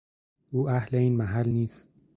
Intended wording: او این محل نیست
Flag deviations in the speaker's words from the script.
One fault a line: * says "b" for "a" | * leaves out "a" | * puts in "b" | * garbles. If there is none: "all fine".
* puts in "اهل"